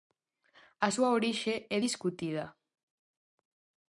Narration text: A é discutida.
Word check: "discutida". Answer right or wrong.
right